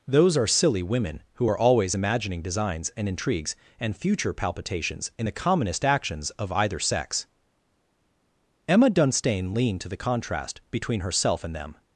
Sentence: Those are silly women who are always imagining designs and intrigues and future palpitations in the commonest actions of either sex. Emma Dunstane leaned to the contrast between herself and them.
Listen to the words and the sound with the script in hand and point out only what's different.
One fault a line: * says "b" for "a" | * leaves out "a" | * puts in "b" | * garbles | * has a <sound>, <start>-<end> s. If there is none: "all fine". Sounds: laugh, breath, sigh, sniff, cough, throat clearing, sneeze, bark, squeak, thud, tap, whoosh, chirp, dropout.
all fine